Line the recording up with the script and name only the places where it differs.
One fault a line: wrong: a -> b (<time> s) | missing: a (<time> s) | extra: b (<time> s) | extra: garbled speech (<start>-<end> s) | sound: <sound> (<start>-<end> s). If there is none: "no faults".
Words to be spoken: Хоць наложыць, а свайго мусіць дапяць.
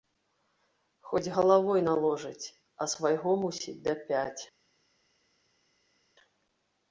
extra: галавой (1.4 s)